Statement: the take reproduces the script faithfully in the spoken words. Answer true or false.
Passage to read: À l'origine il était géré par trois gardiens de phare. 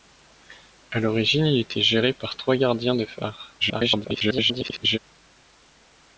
false